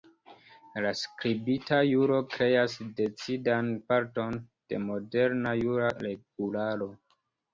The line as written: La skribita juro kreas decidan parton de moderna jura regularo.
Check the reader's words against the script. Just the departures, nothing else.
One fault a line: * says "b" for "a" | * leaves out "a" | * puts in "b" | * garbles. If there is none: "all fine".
all fine